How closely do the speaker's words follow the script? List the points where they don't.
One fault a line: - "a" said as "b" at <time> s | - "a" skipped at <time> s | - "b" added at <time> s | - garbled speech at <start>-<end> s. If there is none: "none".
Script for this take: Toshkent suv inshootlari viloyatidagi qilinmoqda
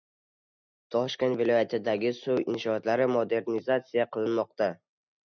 - "viloyatidagi" added at 1.4 s
- "viloyatidagi" said as "modernizatsiya" at 3.2 s